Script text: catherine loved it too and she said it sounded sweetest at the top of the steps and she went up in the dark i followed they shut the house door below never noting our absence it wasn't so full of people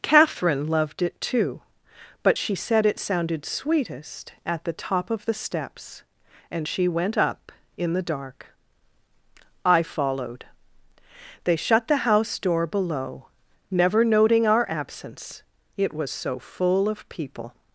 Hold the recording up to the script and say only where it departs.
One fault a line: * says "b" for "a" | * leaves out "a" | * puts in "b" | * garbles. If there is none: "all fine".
* says "but" for "and"
* says "was" for "wasn't"